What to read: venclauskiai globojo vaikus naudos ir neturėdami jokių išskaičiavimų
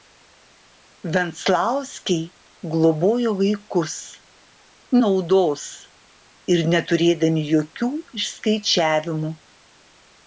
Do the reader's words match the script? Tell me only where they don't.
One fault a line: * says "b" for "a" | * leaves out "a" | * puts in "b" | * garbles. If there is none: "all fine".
all fine